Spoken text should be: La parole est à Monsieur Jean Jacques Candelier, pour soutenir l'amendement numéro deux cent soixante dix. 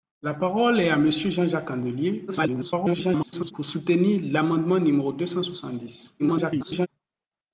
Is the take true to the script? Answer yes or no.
no